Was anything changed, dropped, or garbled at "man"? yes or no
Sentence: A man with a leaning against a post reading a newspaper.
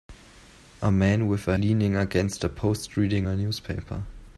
no